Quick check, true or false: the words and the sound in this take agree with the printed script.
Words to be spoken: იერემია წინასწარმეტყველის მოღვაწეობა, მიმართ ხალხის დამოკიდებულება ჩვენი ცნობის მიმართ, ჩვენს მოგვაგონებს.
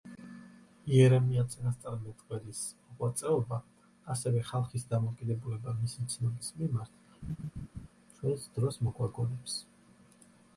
false